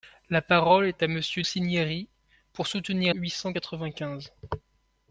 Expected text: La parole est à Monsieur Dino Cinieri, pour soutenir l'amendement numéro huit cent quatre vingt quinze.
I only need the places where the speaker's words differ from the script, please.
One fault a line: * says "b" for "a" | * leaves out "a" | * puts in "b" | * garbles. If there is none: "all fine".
* leaves out "Dino"
* leaves out "l'amendement numéro"